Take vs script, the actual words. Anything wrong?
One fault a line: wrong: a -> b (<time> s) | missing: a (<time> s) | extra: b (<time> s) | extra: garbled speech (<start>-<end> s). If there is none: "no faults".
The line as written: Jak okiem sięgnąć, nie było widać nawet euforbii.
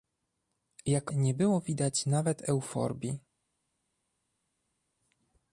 missing: okiem sięgnąć (1.1 s)